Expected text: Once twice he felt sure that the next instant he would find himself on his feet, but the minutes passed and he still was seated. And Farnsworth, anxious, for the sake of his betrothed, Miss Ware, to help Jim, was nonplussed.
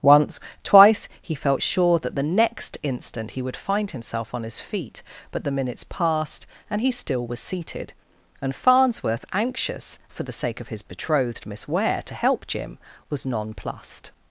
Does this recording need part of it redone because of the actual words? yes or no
no